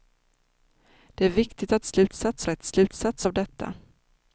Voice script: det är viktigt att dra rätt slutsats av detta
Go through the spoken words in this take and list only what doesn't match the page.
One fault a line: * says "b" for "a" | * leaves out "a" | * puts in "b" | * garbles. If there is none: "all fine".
* says "slutsats" for "dra"